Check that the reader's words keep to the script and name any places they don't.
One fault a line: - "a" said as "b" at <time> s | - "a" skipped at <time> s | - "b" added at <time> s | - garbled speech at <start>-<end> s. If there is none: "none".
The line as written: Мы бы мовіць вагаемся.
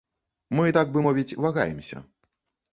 - "так" added at 0.7 s